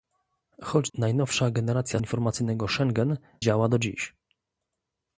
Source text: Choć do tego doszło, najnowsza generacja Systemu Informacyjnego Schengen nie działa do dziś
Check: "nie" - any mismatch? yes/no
yes